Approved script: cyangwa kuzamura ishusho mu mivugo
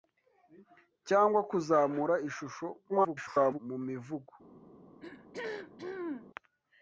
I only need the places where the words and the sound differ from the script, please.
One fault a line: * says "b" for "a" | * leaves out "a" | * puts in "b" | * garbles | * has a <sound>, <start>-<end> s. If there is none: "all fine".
* garbles
* has a throat clearing, 5.0-6.3 s